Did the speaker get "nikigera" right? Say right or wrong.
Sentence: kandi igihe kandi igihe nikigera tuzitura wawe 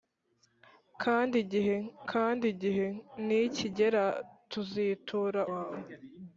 right